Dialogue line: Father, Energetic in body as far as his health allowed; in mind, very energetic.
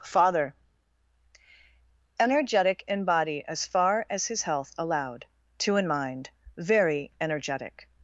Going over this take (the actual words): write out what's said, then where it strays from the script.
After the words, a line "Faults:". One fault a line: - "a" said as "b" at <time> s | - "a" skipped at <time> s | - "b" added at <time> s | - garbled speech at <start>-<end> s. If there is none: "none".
Father, Energetic in body as far as his health allowed; two in mind, very energetic.
Faults:
- "two" added at 5.6 s